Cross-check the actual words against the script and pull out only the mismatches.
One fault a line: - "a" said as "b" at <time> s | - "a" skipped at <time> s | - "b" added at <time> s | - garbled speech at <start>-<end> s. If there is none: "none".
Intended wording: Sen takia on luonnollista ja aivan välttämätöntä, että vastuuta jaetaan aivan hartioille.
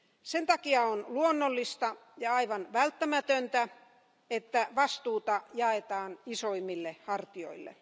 - "aivan" said as "isoimmille" at 6.2 s